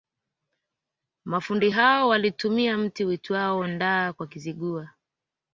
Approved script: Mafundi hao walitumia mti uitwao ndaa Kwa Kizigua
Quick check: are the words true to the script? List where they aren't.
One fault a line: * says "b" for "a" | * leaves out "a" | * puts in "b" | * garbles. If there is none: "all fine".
all fine